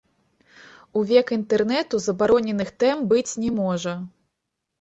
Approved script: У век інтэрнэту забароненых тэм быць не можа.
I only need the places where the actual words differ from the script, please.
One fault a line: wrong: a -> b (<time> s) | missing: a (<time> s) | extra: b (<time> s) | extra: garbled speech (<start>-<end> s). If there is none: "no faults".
no faults